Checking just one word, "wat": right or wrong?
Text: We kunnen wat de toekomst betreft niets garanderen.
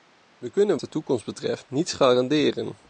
wrong